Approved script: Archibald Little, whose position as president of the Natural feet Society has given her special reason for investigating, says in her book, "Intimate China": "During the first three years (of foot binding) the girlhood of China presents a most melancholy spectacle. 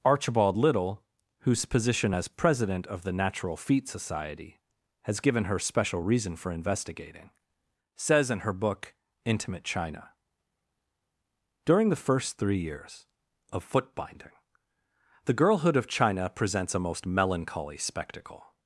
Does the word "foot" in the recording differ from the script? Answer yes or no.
no